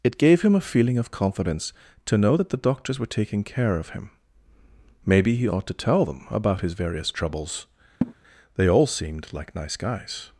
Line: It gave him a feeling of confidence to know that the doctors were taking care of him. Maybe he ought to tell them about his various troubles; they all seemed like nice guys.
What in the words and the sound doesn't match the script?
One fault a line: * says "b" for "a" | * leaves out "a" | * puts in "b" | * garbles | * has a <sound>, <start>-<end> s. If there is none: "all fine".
* has a laugh, 8.0-8.1 s